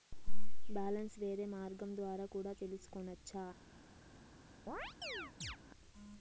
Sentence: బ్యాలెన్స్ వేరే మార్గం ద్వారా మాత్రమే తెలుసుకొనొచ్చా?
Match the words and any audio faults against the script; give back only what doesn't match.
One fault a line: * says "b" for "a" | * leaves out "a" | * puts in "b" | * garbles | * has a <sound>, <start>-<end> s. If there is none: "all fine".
* says "కూడా" for "మాత్రమే"
* has a chirp, 4.7-5.6 s